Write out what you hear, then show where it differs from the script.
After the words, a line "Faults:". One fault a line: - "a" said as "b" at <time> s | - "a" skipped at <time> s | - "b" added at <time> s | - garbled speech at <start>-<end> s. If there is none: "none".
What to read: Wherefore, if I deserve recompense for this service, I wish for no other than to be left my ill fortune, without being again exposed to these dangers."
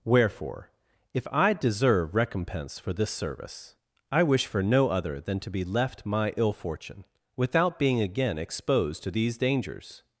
Wherefore, if I deserve recompense for this service, I wish for no other than to be left my ill fortune, without being again exposed to these dangers."
Faults:
none